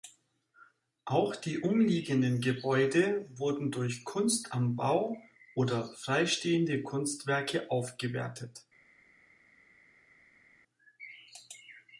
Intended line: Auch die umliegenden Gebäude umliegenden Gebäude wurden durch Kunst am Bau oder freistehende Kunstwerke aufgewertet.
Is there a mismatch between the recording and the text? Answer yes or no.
yes